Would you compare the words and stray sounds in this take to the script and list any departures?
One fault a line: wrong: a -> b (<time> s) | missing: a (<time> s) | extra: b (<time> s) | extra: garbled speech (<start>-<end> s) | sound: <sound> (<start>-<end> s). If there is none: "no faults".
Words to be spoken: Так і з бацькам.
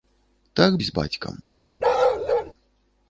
sound: bark (1.8-2.5 s)